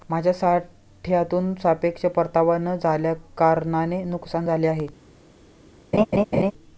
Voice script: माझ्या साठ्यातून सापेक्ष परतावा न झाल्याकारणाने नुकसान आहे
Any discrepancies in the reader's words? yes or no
yes